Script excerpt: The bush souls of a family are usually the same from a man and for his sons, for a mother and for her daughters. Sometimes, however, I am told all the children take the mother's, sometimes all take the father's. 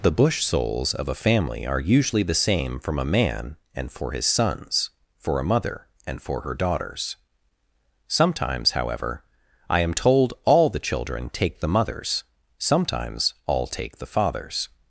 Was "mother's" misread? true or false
false